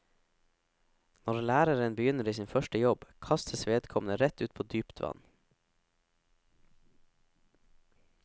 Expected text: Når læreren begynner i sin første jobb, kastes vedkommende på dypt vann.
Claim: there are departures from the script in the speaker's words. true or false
true